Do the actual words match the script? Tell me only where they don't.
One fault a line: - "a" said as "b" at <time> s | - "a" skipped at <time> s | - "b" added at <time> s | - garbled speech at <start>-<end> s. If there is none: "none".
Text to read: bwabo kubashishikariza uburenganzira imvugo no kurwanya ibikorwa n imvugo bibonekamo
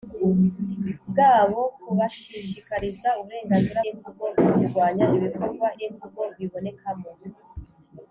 none